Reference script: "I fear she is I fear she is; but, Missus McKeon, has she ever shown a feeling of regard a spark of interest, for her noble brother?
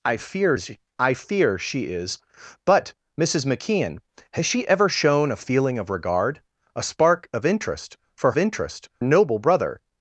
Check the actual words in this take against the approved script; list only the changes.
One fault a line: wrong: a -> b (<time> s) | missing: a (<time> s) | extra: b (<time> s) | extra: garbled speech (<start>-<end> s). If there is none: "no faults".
missing: she (0.6 s)
wrong: her -> interest (8.4 s)